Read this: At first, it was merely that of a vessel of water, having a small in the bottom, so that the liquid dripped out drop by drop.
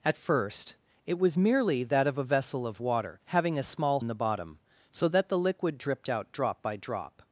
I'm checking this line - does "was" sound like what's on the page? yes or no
yes